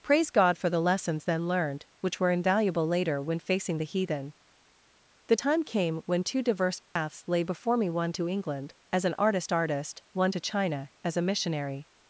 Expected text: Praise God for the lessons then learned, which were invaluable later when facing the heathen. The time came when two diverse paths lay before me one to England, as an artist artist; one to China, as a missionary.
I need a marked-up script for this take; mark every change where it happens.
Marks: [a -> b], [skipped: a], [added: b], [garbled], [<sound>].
Praise God for the lessons then learned, which were invaluable later when facing the heathen. The time came when two diverse paths [dropout] lay before me one to England, as an artist artist; one to China, as a missionary.